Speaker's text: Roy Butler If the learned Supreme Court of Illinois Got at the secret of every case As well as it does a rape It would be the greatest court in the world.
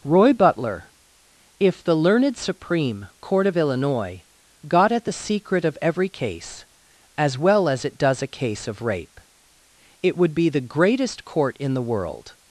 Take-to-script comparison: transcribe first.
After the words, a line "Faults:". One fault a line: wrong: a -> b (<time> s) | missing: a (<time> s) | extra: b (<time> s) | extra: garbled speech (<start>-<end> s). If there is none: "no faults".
Roy Butler If the learned Supreme Court of Illinois Got at the secret of every case As well as it does a case of rape It would be the greatest court in the world.
Faults:
extra: case of (8.3 s)